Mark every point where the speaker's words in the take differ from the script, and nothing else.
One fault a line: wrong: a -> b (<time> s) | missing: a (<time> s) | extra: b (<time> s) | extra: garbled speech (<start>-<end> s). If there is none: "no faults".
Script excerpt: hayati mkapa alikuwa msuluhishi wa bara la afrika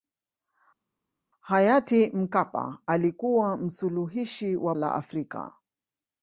missing: bara (4.7 s)